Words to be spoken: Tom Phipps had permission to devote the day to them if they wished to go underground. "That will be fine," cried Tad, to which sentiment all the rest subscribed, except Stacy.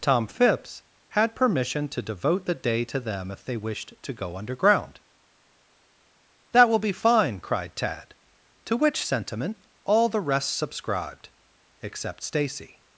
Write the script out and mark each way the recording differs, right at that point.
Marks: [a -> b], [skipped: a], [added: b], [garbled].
Tom Phipps had permission to devote the day to them if they wished to go underground. "That will be fine," cried Tad, to which sentiment all the rest subscribed, except Stacy.